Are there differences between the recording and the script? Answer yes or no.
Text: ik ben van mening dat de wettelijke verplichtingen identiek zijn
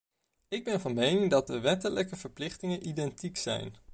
no